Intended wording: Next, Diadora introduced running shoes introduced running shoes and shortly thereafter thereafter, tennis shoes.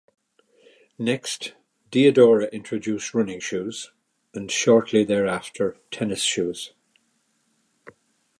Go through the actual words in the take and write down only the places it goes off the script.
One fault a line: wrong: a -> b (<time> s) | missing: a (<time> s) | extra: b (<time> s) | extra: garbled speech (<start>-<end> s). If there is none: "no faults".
missing: introduced running shoes (3.9 s)
missing: thereafter (5.8 s)